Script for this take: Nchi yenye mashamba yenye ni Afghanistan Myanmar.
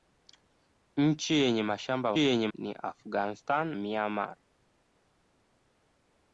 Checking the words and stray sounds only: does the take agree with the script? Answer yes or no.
yes